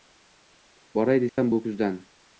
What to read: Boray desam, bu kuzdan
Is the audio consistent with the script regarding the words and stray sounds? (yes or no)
no